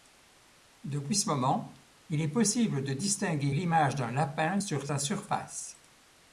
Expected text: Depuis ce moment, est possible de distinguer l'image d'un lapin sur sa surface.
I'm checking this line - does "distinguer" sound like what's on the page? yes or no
yes